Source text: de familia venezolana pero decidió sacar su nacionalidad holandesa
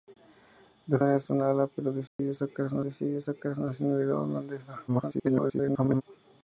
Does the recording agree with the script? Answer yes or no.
no